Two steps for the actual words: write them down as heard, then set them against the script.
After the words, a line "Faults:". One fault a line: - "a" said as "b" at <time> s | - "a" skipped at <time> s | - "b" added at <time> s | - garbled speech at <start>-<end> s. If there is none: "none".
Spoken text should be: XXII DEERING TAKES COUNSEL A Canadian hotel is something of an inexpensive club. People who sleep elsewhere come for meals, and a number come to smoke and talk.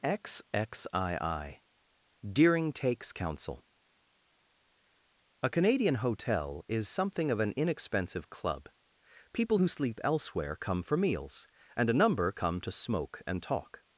XXII DEERING TAKES COUNSEL A Canadian hotel is something of an inexpensive club. People who sleep elsewhere come for meals, and a number come to smoke and talk.
Faults:
none